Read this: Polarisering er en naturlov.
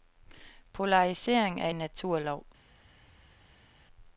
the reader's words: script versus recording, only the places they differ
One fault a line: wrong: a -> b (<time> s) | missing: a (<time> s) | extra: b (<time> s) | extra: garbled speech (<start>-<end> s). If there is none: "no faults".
no faults